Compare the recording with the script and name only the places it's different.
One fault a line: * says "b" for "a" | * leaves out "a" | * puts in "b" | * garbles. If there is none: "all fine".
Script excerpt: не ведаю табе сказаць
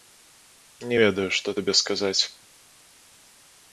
* puts in "што"